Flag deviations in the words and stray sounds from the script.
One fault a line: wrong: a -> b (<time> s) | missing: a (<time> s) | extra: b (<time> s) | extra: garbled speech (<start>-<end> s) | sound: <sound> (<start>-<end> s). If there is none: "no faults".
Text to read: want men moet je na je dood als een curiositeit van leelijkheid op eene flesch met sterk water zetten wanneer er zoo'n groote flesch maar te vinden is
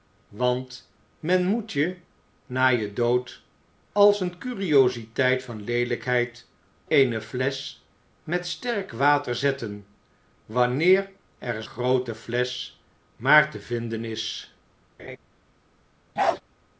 missing: op (6.5 s)
missing: zoo'n (11.6 s)
sound: laugh (15.0-15.2 s)
sound: bark (16.2-16.4 s)